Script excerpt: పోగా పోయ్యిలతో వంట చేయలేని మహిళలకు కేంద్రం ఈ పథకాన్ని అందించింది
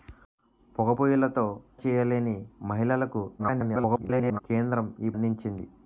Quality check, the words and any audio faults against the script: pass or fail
fail